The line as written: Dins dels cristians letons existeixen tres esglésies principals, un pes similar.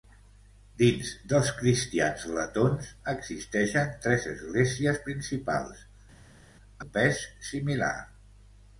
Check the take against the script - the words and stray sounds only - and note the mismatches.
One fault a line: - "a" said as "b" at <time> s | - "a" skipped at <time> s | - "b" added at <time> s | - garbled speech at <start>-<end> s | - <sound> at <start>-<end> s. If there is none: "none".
none